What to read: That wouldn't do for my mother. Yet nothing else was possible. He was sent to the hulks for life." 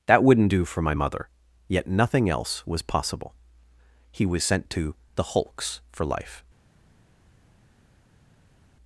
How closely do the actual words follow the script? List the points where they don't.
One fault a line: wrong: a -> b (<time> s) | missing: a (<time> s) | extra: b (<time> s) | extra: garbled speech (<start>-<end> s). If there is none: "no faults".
no faults